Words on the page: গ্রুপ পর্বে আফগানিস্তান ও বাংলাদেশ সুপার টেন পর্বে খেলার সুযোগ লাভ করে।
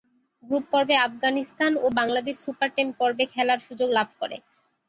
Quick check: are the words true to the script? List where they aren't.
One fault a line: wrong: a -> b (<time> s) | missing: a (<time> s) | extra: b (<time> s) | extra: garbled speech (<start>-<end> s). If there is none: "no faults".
no faults